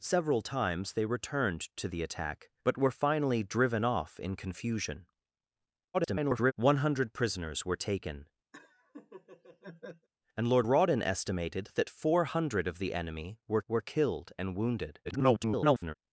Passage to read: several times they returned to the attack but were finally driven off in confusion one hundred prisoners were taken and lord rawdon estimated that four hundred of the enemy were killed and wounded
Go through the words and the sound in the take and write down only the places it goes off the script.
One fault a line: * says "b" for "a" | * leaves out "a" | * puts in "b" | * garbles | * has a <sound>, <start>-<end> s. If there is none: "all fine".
* garbles
* has a laugh, 8.5-10.1 s
* puts in "were"
* garbles